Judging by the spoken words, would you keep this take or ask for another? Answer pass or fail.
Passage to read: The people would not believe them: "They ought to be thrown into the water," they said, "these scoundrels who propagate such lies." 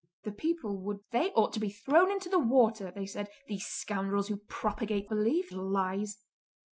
fail